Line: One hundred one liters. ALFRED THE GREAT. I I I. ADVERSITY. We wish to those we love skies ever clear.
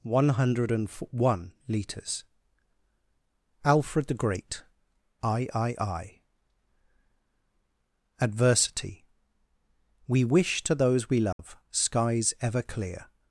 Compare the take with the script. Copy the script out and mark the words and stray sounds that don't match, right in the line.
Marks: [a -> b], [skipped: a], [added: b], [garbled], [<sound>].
One hundred one liters. ALFRED THE GREAT. I I I. ADVERSITY. We wish to those we love [dropout] skies ever clear.